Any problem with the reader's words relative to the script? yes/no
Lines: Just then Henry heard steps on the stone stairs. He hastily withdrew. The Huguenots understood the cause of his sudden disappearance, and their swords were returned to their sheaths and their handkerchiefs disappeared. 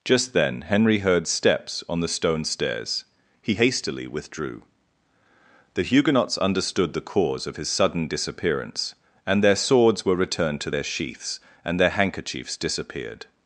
no